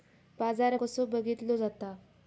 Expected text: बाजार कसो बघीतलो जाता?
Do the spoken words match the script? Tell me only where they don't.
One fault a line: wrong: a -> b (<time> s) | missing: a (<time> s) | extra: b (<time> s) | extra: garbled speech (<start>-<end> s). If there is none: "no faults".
no faults